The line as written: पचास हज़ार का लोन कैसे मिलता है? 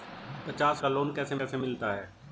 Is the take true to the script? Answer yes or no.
no